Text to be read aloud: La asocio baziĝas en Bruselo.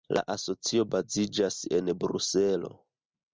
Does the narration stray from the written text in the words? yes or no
no